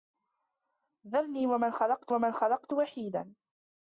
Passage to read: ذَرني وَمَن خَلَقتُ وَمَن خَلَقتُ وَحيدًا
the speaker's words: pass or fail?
pass